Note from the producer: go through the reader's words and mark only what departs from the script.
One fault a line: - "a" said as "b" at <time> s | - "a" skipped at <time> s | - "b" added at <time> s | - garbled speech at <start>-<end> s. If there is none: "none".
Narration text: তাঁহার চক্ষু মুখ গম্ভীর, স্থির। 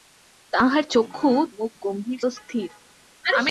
none